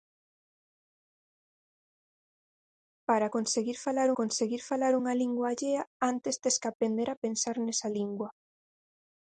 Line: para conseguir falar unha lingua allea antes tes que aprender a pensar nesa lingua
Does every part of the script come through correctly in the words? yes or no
no